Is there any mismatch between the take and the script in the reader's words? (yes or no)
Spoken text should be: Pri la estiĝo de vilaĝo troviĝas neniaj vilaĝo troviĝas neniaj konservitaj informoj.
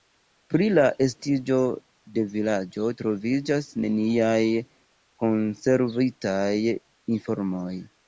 yes